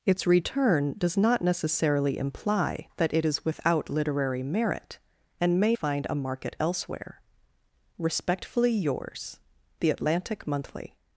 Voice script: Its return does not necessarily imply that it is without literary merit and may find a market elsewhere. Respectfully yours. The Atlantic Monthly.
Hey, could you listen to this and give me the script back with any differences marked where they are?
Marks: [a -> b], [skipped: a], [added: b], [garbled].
Its return does not necessarily imply that it is without literary merit and may find a market elsewhere. Respectfully yours. The Atlantic Monthly.